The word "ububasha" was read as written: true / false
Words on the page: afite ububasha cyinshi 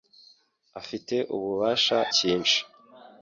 true